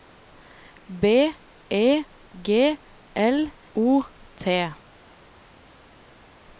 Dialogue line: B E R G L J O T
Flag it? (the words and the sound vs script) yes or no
yes